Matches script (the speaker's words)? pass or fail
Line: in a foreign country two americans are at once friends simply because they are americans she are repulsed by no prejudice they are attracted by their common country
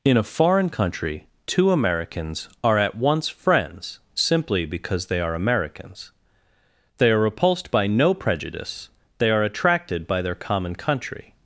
fail